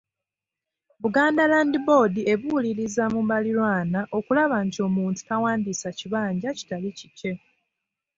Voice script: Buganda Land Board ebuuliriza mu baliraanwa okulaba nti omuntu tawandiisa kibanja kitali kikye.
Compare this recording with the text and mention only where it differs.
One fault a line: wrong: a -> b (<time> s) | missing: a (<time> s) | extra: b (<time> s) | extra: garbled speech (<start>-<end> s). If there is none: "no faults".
no faults